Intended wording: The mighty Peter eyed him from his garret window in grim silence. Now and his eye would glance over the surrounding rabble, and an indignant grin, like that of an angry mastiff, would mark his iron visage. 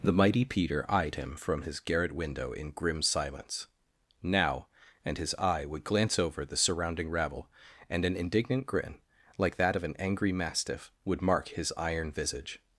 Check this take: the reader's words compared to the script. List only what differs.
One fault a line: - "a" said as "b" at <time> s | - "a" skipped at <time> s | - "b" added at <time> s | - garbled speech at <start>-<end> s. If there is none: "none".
none